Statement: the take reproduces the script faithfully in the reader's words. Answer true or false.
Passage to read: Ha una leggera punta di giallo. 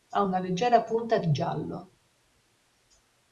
true